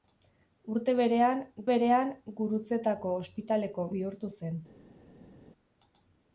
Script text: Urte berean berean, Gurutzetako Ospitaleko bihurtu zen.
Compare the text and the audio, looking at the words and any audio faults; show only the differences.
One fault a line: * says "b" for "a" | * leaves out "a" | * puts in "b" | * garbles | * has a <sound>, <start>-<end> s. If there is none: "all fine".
all fine